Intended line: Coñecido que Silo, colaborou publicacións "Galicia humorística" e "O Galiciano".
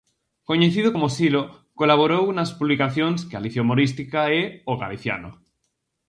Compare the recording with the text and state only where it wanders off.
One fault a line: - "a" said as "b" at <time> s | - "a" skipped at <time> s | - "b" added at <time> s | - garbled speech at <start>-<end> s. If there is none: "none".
- "que" said as "como" at 0.9 s
- "nas" added at 2.4 s